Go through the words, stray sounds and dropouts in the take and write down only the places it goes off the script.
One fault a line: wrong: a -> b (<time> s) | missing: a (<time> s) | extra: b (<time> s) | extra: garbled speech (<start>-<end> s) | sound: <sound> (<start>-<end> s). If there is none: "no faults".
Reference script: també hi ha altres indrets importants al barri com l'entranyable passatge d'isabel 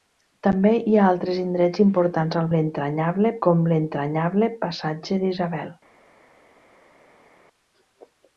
wrong: barri -> l'entranyable (2.6 s)